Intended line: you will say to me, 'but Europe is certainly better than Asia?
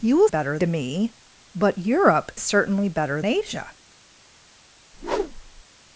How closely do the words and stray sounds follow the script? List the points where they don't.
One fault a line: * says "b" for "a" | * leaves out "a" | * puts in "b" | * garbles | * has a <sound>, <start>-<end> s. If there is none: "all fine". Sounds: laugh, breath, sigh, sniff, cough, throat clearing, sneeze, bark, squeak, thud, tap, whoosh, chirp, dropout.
* says "better" for "say"
* leaves out "is"
* leaves out "than"
* has a whoosh, 4.9-5.6 s